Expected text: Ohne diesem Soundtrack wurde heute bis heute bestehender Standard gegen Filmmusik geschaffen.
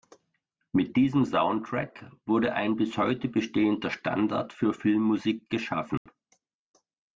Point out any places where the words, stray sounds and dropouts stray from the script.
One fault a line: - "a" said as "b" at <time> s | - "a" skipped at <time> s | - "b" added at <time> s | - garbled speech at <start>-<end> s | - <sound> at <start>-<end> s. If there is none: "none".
- "Ohne" said as "Mit" at 0.7 s
- "heute" said as "ein" at 2.5 s
- "gegen" said as "für" at 4.5 s
- dropout at 6.0-6.1 s